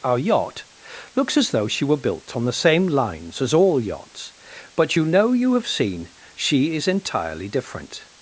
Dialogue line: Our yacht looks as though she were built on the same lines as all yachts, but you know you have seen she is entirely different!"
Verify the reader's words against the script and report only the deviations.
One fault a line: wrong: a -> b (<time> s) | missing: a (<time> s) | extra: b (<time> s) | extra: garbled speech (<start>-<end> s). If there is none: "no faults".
no faults